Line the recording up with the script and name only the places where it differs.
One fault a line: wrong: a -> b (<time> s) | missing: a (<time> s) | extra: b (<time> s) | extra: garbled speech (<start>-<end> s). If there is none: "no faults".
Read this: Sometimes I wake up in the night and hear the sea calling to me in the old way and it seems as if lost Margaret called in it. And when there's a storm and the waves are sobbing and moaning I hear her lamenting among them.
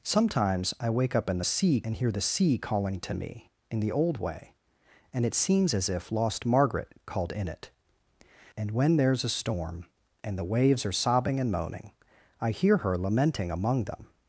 wrong: night -> sea (1.4 s)